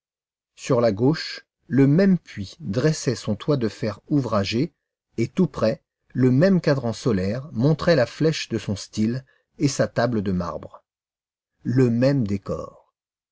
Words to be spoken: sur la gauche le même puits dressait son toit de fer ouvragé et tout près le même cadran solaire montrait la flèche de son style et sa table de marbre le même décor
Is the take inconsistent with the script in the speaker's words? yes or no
no